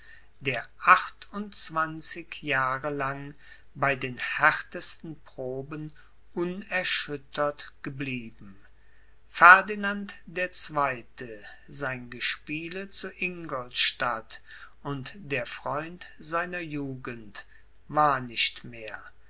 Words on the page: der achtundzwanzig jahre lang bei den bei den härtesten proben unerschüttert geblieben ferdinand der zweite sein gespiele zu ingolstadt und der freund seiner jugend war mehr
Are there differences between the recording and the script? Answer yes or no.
yes